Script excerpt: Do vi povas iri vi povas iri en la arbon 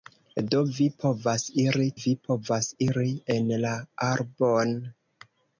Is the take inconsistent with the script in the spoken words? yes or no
no